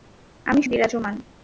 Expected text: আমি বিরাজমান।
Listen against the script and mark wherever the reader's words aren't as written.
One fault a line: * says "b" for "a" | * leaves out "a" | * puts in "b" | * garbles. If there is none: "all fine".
all fine